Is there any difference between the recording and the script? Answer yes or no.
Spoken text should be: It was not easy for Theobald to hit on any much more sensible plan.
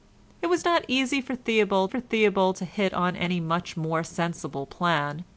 yes